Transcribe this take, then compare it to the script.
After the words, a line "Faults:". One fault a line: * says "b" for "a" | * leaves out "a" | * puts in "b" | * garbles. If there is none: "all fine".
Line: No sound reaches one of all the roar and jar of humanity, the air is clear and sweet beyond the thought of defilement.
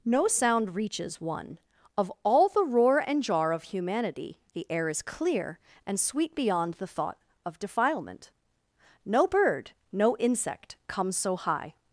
No sound reaches one of all the roar and jar of humanity, the air is clear and sweet beyond the thought of defilement. No bird, no insect comes so high
Faults:
* puts in "No bird no insect comes so high"